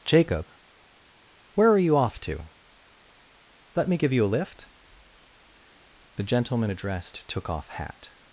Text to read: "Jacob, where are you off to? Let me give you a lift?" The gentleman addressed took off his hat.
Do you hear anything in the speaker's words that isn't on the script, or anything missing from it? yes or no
yes